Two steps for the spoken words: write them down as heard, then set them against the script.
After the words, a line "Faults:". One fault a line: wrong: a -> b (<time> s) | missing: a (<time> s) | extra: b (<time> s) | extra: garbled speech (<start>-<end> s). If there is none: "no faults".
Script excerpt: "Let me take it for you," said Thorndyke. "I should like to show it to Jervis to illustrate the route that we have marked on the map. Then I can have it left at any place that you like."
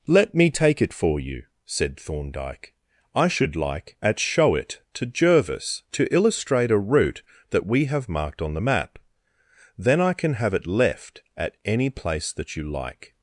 "Let me take it for you," said Thorndyke. "I should like at show it to Jervis to illustrate a route that we have marked on the map. Then I can have it left at any place that you like."
Faults:
wrong: to -> at (4.0 s)
wrong: the -> a (6.7 s)